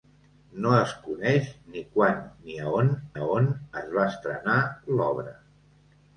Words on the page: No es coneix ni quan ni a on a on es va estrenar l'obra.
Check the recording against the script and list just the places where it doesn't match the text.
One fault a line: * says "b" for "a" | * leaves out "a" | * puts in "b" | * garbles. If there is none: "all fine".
all fine